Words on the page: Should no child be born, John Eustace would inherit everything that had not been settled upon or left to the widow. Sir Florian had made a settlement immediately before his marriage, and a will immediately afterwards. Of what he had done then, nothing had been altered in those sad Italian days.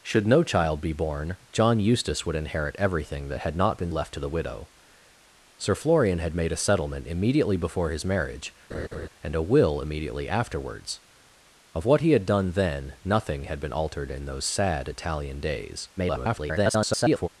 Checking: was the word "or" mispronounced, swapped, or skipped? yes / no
yes